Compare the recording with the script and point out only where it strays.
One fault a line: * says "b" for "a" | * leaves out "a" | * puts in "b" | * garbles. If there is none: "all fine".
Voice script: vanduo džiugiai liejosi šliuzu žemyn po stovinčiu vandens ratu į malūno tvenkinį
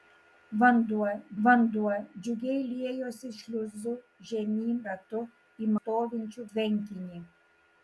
* puts in "vanduo"
* leaves out "po stovinčiu vandens"
* says "stovinčiu" for "malūno"